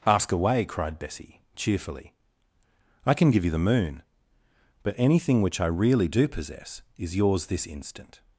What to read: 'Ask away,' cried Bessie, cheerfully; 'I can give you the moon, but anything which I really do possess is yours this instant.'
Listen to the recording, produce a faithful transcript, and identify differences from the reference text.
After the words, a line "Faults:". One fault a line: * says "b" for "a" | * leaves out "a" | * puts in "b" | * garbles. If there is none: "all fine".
'Ask away,' cried Bessie, cheerfully; 'I can give you the moon, but anything which I really do possess is yours this instant.'
Faults:
all fine